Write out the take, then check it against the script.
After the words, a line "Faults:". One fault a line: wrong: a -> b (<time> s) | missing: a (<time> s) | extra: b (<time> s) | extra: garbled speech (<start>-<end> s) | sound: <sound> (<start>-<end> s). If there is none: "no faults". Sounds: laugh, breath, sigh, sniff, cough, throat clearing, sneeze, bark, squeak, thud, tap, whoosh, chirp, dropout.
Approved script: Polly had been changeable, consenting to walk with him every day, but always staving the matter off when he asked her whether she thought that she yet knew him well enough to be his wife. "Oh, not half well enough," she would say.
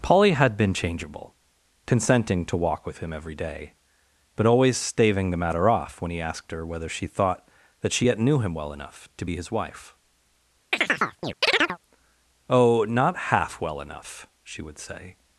Polly had been changeable, consenting to walk with him every day, but always staving the matter off when he asked her whether she thought that she yet knew him well enough to be his wife. "Oh, not half well enough," she would say.
Faults:
sound: chirp (10.7-11.8 s)